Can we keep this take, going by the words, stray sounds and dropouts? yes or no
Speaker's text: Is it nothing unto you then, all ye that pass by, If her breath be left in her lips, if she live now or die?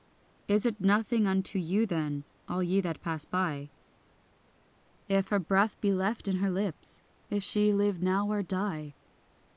yes